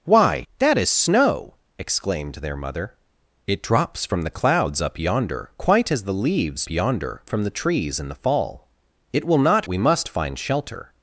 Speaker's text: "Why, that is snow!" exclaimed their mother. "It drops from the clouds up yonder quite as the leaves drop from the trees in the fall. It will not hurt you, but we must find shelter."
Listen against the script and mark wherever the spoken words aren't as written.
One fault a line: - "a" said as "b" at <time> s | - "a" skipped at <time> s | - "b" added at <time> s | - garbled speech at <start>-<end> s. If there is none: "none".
- "drop" said as "yonder" at 6.7 s
- "hurt you but" skipped at 9.7 s